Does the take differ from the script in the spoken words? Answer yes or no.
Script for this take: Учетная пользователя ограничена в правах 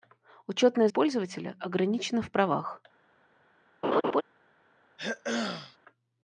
no